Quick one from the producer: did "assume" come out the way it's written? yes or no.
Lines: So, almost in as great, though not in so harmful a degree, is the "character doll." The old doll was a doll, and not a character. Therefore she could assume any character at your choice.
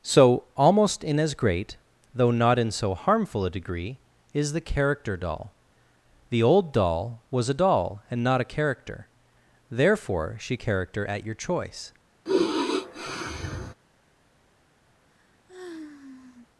no